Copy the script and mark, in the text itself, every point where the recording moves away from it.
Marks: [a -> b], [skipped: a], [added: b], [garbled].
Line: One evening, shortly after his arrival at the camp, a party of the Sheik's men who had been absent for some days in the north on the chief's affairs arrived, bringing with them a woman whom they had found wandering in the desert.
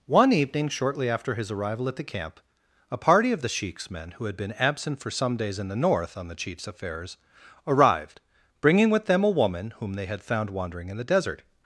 One evening, shortly after his arrival at the camp, a party of the Sheik's men who had been absent for some days in the north on the chief's affairs arrived, bringing with them a woman whom they had found wandering in the desert.